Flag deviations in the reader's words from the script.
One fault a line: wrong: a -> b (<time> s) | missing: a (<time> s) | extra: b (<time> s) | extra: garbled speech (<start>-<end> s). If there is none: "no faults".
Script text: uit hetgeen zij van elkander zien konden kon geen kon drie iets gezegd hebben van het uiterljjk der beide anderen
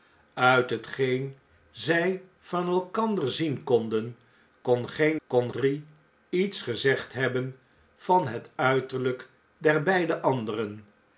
no faults